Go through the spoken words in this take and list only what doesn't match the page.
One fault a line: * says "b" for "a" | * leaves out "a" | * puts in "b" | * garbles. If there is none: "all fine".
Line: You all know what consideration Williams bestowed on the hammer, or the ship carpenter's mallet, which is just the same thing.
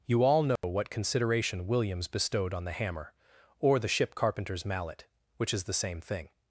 * leaves out "just"